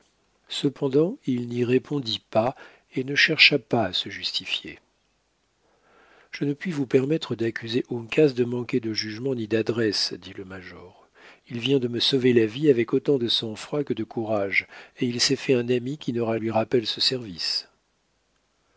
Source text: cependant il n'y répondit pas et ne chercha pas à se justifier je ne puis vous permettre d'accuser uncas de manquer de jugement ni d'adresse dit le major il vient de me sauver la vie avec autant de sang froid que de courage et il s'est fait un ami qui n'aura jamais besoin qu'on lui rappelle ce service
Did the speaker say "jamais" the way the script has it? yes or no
no